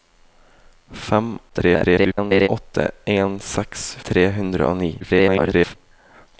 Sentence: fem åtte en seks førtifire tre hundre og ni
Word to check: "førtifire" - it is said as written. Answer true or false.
false